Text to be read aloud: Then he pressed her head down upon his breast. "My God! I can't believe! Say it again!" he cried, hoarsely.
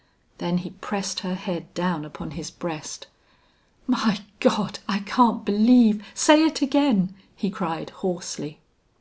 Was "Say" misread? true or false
false